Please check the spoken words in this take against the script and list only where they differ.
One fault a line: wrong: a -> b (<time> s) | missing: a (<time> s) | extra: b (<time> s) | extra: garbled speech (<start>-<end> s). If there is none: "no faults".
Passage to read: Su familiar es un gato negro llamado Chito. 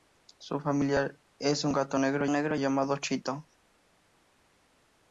extra: negro (2.3 s)